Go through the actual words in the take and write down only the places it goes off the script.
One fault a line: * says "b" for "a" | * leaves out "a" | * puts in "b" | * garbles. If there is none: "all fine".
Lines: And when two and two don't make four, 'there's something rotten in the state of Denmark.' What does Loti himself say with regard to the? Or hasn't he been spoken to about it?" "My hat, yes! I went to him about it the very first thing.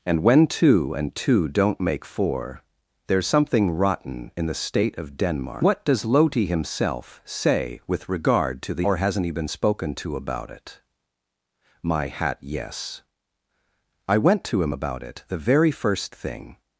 all fine